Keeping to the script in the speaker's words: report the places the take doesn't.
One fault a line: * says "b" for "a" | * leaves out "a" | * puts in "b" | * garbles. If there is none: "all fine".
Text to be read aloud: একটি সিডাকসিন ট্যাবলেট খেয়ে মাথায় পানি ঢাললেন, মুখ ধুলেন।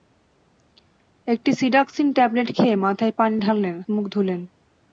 all fine